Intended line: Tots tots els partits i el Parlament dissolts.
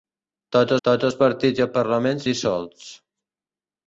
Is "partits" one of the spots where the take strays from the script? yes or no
no